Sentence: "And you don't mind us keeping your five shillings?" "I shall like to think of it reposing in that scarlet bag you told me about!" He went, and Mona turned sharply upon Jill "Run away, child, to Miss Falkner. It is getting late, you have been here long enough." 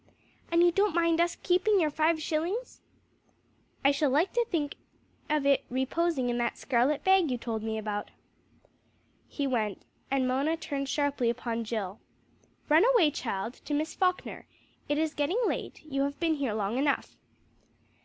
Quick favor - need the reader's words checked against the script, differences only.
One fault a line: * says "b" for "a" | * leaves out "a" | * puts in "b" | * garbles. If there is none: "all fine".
all fine